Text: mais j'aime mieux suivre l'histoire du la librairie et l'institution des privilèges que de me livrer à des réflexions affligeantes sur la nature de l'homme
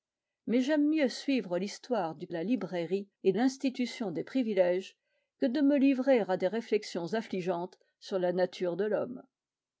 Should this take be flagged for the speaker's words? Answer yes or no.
no